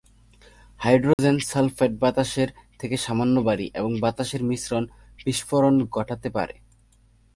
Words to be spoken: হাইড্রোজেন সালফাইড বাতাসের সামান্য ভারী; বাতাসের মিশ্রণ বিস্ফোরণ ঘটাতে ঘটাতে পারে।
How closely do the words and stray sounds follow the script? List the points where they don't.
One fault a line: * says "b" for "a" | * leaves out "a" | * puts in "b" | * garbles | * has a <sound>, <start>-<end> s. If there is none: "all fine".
* has a dropout, 1.1-1.2 s
* puts in "থেকে"
* puts in "এবং"
* leaves out "ঘটাতে"